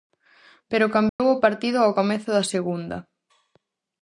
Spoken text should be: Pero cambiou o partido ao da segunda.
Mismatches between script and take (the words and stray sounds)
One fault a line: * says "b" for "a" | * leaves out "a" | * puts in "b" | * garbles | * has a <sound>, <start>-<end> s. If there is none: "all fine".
* has a dropout, 1.1-1.2 s
* puts in "comezo"